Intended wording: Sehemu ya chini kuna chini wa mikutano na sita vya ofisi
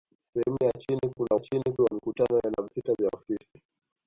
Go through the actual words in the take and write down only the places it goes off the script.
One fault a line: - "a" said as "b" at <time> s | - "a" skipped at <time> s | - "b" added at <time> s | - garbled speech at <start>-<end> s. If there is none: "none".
none